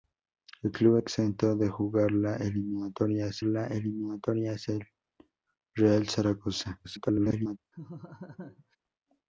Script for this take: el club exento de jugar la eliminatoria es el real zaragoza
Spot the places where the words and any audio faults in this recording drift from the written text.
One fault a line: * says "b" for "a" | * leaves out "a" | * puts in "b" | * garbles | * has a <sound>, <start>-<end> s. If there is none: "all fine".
* puts in "la eliminatoria es"
* garbles
* has a laugh, 7.7-8.8 s